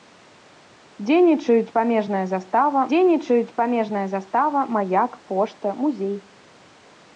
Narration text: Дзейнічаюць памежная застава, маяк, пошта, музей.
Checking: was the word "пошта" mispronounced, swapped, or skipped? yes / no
no